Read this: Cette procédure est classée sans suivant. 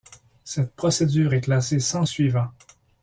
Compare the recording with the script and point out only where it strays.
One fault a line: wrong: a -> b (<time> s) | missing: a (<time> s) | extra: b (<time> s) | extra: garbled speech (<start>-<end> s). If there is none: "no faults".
no faults